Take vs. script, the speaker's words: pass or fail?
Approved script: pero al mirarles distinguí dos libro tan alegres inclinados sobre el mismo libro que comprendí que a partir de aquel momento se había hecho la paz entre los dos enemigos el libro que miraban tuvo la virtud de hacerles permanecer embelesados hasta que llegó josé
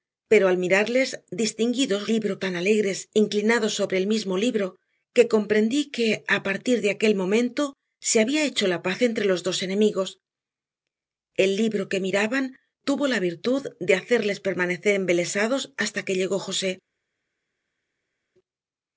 pass